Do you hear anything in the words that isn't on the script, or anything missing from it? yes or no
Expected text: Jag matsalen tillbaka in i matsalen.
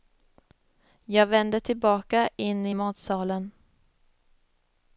yes